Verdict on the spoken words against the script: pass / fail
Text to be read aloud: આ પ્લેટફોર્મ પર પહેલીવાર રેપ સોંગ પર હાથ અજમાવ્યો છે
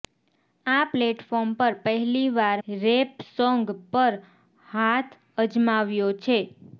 pass